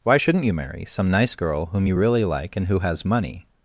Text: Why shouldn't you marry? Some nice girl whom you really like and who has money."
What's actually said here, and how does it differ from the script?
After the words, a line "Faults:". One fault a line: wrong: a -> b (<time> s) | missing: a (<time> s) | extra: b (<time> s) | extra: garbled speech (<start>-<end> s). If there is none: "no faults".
Why shouldn't you marry? Some nice girl whom you really like and who has money."
Faults:
no faults